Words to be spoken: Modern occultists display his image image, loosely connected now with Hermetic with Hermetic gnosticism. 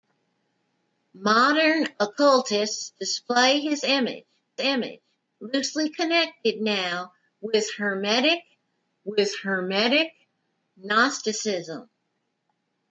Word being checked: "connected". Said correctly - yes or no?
yes